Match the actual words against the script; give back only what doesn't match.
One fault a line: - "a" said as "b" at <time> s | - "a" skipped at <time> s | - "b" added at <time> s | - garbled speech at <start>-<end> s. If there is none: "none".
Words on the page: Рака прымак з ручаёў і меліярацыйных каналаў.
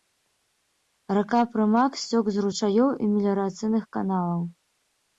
- "сцёк" added at 2.0 s